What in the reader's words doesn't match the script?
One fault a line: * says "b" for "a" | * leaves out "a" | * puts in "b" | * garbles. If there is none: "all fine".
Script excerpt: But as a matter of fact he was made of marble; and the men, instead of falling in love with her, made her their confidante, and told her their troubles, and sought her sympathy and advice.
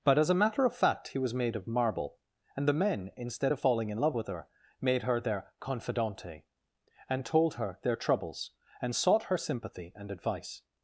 all fine